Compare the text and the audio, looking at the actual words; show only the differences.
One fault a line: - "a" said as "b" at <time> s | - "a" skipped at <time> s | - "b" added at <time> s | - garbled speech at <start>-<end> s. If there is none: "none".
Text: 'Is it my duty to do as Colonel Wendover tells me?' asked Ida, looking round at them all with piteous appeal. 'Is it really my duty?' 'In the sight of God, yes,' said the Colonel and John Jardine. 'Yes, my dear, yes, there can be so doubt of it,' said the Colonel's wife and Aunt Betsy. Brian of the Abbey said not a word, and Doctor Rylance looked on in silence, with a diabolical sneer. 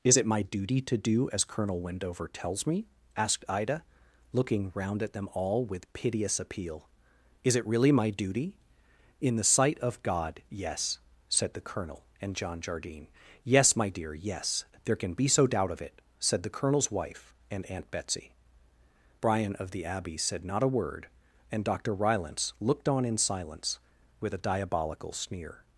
none